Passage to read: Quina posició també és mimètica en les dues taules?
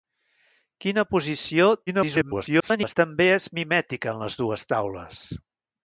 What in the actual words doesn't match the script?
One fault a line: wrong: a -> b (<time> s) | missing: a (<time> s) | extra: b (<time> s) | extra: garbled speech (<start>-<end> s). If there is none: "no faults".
extra: garbled speech (1.9-3.0 s)